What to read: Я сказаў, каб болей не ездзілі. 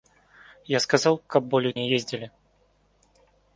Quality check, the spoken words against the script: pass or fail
pass